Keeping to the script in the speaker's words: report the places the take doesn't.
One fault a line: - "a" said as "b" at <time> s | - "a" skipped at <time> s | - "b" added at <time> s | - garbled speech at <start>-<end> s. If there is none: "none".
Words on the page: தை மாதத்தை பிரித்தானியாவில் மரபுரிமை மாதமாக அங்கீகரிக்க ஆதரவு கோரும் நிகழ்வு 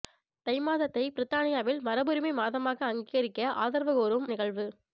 none